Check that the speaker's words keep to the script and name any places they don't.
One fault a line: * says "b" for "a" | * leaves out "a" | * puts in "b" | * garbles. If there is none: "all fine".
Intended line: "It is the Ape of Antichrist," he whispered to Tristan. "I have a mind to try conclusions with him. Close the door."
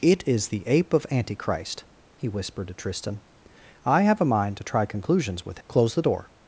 * leaves out "him"